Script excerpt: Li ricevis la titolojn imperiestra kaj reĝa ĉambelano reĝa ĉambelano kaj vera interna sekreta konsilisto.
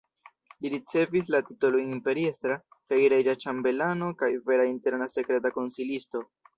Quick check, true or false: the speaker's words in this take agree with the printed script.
false